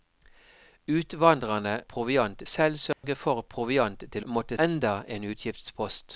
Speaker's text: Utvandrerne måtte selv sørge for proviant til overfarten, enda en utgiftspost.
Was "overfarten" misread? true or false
true